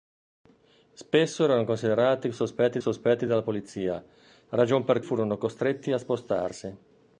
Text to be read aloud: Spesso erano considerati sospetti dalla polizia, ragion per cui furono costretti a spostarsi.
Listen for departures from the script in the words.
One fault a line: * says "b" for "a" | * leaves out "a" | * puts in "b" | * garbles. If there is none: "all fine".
* puts in "sospetti"
* leaves out "cui"